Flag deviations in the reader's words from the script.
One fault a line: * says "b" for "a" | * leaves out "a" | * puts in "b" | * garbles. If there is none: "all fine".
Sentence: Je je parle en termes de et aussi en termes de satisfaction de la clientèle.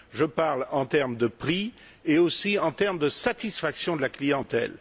* leaves out "je"
* puts in "prix"